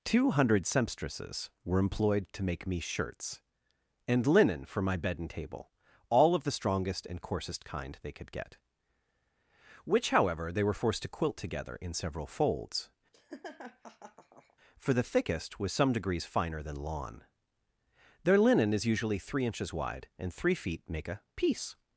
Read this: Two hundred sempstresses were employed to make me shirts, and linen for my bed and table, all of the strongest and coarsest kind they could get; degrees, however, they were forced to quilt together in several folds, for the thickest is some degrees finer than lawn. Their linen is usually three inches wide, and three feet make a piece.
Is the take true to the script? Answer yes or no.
no